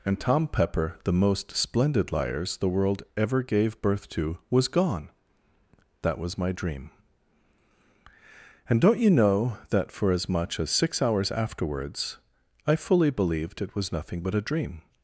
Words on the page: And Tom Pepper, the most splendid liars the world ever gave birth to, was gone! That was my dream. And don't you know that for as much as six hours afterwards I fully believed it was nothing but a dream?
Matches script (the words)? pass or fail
pass